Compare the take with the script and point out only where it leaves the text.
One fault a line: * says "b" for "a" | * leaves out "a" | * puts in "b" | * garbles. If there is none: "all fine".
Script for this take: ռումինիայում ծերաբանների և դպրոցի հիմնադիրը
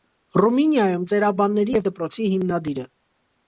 all fine